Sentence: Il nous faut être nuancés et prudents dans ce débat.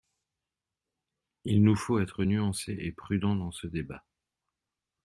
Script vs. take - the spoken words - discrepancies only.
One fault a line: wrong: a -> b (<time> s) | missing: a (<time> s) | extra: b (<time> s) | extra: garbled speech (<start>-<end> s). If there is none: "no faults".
no faults